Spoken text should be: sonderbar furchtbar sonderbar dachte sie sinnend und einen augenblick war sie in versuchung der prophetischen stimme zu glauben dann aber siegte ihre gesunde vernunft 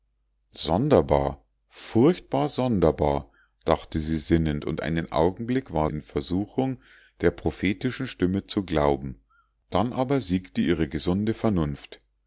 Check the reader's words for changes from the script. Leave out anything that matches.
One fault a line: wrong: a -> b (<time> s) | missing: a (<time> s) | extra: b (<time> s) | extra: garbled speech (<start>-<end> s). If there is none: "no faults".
missing: sie (5.9 s)